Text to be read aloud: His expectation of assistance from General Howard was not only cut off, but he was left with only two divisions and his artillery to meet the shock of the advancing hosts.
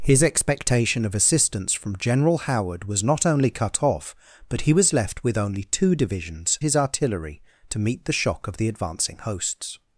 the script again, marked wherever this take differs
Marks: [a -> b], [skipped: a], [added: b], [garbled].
His expectation of assistance from General Howard was not only cut off, but he was left with only two divisions [skipped: and] his artillery to meet the shock of the advancing hosts.